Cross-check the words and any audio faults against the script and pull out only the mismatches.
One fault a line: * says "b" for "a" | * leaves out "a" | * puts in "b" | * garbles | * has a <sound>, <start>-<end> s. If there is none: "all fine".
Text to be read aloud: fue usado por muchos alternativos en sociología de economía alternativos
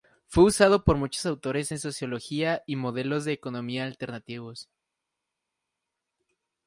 * says "autores" for "alternativos"
* puts in "y modelos"